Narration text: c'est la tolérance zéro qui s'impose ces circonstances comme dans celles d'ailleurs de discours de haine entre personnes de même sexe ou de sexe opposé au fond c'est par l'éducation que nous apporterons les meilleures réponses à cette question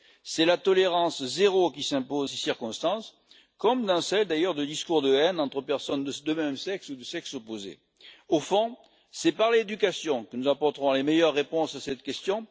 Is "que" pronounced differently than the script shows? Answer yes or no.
no